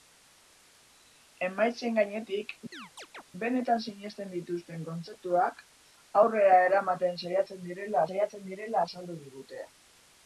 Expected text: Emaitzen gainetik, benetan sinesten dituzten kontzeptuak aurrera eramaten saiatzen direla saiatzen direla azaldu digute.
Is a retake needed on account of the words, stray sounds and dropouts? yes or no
yes